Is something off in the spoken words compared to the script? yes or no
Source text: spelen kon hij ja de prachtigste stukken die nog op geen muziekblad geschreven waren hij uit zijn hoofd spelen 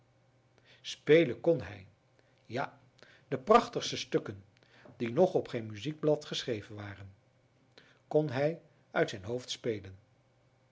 yes